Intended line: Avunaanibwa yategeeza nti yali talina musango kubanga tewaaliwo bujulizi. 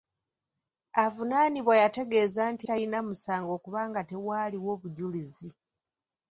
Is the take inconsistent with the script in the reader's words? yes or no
yes